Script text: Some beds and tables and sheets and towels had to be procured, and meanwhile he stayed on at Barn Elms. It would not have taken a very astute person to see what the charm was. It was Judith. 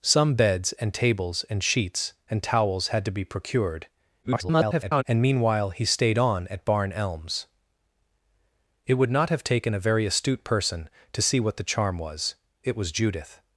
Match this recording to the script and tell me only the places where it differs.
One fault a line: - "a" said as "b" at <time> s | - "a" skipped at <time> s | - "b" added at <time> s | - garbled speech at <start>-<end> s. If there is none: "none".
- garbled speech at 4.2-5.0 s